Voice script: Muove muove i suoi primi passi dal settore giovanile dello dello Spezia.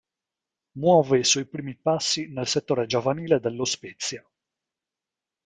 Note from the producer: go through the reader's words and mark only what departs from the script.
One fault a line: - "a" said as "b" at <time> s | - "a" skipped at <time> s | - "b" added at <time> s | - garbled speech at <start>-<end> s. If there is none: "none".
- "muove" skipped at 1.2 s
- "dal" said as "nel" at 2.3 s
- "dello" skipped at 3.6 s